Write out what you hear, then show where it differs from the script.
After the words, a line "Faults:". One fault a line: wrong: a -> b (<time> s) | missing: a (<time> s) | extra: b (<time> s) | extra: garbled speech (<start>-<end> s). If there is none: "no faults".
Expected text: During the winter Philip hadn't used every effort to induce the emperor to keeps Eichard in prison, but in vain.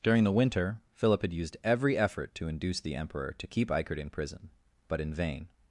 During the winter Philip had used every effort to induce the emperor to keep Eichard in prison, but in vain.
Faults:
wrong: hadn't -> had (1.2 s)
wrong: keeps -> keep (3.5 s)